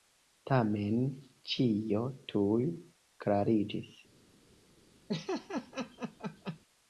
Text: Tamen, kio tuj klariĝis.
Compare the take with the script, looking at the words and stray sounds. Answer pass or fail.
fail